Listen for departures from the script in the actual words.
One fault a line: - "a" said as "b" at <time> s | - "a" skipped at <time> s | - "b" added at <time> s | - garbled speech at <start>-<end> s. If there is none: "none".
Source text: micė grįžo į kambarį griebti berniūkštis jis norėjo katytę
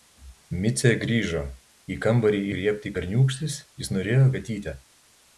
none